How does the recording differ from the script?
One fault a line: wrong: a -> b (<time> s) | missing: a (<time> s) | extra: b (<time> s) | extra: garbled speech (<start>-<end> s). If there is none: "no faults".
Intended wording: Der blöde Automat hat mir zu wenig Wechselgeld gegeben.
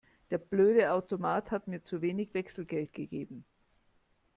no faults